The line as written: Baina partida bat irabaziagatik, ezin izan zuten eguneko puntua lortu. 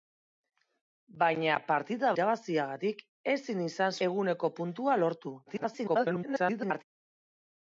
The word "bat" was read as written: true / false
false